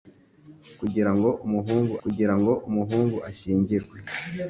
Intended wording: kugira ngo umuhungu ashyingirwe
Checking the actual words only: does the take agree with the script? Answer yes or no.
no